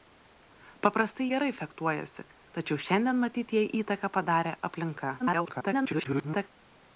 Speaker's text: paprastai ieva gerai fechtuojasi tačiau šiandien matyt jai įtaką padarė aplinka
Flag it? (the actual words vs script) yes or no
yes